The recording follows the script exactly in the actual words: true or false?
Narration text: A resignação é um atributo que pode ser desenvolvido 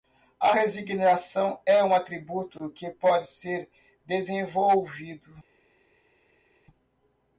true